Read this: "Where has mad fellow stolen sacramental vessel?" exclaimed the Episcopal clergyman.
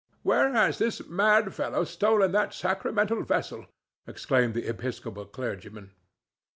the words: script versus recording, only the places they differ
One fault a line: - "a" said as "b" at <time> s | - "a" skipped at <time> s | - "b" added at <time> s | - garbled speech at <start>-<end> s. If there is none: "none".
- "this" added at 0.8 s
- "that" added at 2.3 s